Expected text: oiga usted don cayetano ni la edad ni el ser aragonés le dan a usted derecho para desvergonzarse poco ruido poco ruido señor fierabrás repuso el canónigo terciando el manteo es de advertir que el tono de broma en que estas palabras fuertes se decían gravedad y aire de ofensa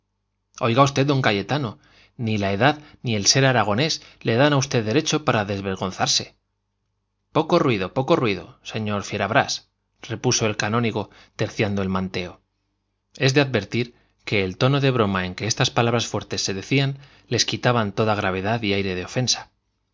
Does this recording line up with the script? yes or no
no